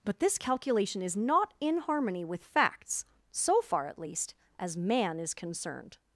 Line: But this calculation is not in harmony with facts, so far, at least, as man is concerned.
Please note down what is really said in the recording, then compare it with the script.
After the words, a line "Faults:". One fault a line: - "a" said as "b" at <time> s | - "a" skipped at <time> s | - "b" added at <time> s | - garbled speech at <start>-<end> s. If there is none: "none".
But this calculation is not in harmony with facts, so far, at least, as man is concerned.
Faults:
none